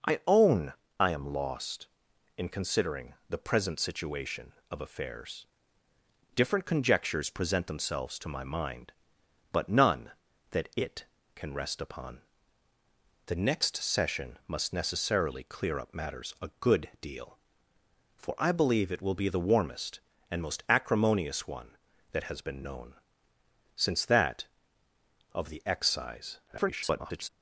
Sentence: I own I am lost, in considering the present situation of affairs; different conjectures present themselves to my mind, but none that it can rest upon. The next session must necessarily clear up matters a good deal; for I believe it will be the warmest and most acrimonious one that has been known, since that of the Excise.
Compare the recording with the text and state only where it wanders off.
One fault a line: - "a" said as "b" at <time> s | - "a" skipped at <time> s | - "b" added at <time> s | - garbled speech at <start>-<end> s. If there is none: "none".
- garbled speech at 26.5-27.3 s